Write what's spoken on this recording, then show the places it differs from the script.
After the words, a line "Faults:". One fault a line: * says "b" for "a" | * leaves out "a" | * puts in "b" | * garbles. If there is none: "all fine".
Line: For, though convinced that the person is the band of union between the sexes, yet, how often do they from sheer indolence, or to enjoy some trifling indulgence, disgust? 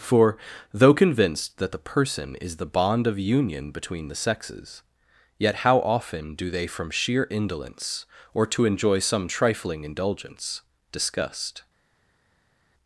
For, though convinced that the person is the bond of union between the sexes, yet, how often do they from sheer indolence, or to enjoy some trifling indulgence, disgust?
Faults:
* says "bond" for "band"